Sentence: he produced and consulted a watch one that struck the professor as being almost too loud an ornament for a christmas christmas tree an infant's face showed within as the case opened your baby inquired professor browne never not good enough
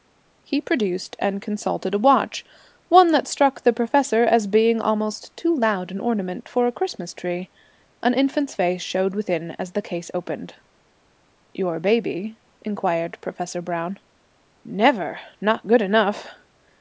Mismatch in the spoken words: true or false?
true